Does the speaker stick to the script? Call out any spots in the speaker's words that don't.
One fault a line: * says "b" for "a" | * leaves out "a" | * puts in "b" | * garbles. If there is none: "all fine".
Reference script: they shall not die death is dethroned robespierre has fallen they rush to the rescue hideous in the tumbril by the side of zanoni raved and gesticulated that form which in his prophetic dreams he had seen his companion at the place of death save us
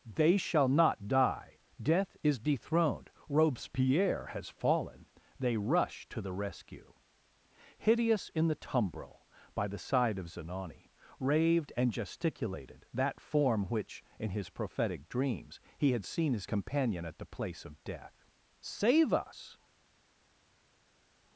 all fine